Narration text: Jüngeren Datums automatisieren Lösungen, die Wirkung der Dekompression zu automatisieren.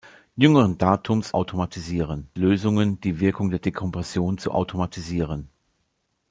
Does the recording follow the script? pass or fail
pass